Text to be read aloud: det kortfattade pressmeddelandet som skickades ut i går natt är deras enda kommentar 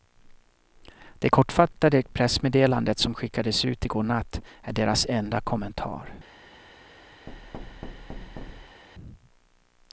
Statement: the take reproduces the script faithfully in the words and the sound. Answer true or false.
false